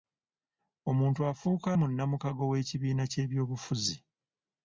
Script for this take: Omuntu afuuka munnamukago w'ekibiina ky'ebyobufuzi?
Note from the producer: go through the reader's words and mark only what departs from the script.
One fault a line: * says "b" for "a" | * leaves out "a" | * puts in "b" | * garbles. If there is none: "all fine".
all fine